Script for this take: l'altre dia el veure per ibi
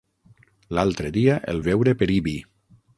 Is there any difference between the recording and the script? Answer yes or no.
no